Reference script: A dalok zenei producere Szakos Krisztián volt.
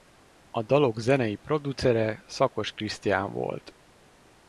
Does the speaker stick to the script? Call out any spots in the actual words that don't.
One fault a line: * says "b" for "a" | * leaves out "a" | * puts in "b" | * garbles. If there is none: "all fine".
all fine